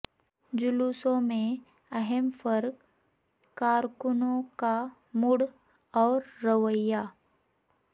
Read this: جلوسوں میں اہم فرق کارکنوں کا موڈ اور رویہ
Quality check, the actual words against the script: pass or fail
pass